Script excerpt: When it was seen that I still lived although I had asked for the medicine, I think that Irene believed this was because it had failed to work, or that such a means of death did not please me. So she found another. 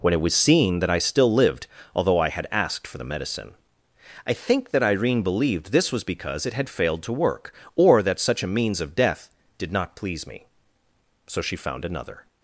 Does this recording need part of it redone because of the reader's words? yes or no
no